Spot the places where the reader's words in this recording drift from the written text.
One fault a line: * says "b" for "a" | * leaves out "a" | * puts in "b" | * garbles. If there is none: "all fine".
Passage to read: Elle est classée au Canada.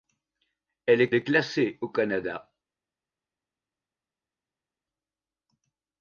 * puts in "est"